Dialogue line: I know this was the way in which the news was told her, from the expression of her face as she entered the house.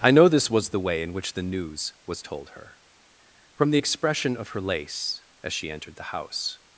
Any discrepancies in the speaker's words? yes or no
yes